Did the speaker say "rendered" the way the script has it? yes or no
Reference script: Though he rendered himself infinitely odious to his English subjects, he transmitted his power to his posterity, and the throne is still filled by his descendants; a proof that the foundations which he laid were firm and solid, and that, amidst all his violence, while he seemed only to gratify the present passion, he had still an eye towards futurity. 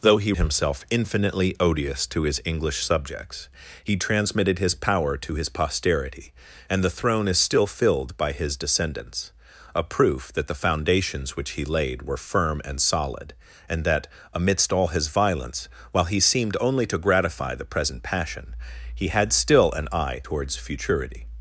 no